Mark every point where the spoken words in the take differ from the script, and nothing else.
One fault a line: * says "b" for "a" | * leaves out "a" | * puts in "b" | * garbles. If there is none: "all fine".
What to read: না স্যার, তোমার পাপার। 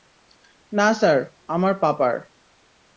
* says "আমার" for "তোমার"